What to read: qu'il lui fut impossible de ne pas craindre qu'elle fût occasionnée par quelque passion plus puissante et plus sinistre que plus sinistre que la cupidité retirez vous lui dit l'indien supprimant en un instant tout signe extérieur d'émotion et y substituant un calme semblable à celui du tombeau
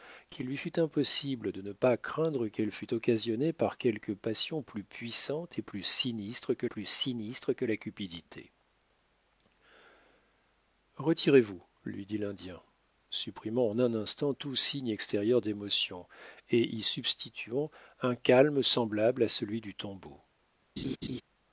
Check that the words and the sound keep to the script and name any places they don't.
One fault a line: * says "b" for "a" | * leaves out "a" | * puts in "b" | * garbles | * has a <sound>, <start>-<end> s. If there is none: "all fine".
* has a laugh, 20.8-21.2 s